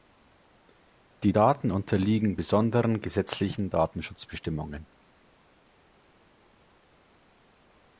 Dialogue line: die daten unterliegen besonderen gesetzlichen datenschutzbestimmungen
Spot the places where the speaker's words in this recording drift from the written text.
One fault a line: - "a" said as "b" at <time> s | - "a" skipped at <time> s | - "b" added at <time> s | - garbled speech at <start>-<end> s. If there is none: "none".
none